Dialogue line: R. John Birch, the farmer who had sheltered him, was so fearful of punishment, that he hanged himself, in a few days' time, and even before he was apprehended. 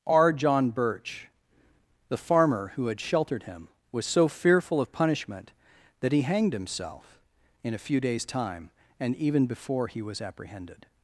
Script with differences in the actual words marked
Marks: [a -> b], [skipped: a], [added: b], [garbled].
R. John Birch, the farmer who had sheltered him, was so fearful of punishment, that he hanged himself, in a few days' time, and even before he was apprehended.